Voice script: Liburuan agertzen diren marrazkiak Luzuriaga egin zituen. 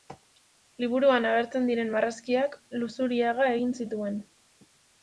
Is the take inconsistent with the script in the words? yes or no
no